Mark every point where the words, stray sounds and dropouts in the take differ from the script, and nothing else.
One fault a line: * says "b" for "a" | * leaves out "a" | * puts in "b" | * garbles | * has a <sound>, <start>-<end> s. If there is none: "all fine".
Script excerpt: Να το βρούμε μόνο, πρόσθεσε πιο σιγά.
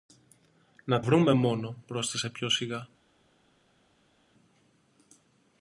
* leaves out "το"